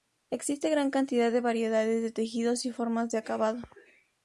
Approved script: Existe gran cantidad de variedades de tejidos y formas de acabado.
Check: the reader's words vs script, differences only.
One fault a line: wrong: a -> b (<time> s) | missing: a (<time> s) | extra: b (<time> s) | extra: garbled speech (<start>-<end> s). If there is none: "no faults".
no faults